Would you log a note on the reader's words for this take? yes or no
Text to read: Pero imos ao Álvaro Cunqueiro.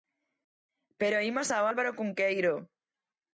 no